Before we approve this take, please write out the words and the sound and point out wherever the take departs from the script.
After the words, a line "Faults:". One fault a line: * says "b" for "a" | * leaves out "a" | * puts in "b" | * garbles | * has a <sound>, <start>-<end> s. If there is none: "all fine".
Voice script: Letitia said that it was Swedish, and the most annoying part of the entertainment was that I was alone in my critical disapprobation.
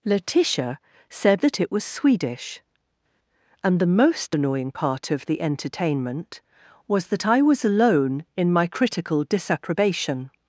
Letitia said that it was Swedish, and the most annoying part of the entertainment was that I was alone in my critical disapprobation.
Faults:
all fine